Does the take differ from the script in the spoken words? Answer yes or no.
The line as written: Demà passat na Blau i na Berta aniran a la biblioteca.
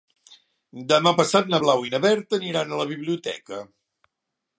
no